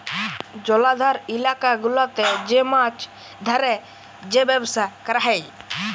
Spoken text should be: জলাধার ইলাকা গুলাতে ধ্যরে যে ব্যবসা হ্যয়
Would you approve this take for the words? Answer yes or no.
no